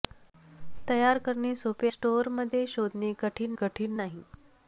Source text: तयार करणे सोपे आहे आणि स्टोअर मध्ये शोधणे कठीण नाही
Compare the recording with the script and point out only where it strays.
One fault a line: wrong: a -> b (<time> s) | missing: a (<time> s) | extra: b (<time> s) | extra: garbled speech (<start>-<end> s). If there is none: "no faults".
missing: आहे आणि (1.9 s)
extra: कठीण (3.6 s)